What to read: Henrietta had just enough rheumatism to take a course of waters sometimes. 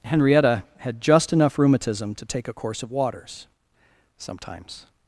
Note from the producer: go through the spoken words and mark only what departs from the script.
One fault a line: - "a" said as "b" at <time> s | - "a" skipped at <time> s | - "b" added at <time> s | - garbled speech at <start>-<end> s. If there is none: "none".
none